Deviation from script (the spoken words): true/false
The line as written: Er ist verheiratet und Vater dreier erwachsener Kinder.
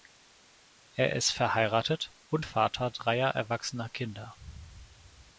false